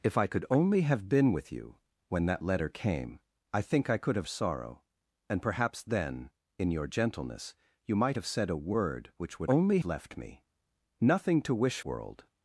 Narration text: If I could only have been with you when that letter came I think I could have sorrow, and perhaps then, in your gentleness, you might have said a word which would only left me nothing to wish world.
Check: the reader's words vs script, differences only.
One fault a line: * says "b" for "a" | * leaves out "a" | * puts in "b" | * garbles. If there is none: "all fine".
all fine